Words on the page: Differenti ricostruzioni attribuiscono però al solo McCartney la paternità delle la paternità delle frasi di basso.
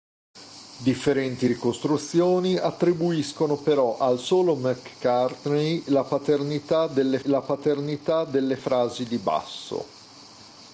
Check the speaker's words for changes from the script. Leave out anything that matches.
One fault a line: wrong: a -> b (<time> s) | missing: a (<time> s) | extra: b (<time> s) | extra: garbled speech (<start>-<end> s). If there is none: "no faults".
no faults